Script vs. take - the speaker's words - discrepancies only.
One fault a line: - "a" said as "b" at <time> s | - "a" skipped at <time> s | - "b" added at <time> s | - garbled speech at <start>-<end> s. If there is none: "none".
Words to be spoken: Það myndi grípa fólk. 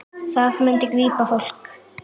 none